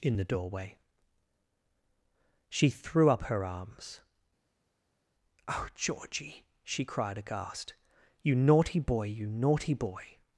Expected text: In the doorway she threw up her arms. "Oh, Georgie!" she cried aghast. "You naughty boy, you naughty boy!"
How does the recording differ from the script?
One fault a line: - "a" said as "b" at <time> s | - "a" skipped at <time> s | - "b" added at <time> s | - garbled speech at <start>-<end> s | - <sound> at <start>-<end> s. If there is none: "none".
none